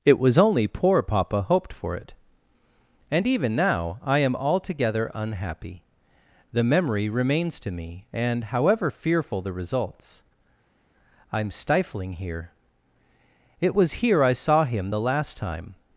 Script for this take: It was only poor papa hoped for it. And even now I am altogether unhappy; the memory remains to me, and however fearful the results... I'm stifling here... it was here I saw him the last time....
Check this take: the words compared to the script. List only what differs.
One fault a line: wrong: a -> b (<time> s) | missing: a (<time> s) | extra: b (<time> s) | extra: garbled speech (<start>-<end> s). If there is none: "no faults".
no faults